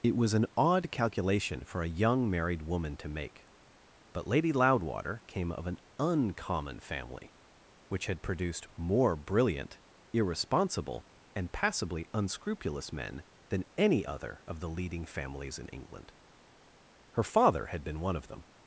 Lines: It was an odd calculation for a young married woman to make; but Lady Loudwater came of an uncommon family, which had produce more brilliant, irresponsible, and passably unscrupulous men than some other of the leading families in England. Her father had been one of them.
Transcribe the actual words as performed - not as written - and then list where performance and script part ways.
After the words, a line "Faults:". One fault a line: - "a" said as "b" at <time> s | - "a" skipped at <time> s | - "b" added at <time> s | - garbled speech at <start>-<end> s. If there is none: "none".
It was an odd calculation for a young married woman to make; but Lady Loudwater came of an uncommon family, which had produced more brilliant, irresponsible, and passably unscrupulous men than any other of the leading families in England. Her father had been one of them.
Faults:
- "produce" said as "produced" at 8.2 s
- "some" said as "any" at 13.8 s